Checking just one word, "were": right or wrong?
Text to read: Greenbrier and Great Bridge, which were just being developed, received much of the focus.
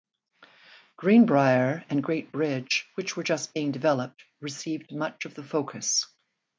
right